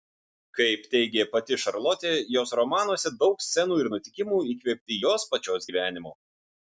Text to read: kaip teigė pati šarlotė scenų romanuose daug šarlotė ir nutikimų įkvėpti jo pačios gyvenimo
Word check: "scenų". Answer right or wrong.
wrong